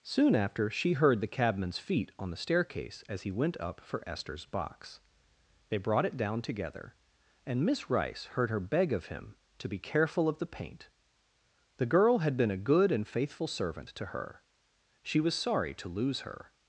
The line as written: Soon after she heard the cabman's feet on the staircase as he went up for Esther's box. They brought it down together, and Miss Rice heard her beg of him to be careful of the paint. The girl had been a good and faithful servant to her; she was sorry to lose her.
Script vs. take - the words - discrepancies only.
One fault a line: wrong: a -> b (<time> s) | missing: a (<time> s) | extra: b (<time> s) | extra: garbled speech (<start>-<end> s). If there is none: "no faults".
no faults